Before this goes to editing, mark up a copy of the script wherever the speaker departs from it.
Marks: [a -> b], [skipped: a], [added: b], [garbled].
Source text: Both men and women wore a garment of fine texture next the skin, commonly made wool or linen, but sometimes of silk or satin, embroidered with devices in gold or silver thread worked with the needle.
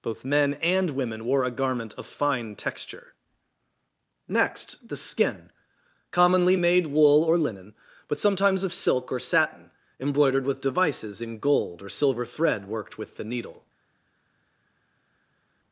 Both men and women wore a garment of fine texture next the skin, commonly made wool or linen, but sometimes of silk or satin, embroidered with devices in gold or silver thread worked with the needle.